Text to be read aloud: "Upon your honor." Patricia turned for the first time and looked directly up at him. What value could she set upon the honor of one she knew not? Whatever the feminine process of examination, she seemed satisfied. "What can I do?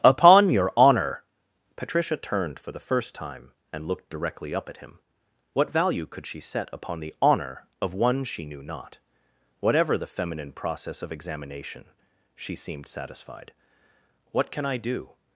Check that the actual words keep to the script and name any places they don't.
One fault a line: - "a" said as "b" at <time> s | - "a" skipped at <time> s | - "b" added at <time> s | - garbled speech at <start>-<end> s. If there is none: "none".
none